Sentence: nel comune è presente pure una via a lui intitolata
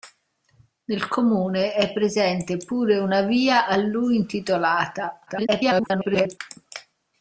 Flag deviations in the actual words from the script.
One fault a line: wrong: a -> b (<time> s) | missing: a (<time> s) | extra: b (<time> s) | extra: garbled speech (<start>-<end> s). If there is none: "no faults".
extra: garbled speech (5.3-6.4 s)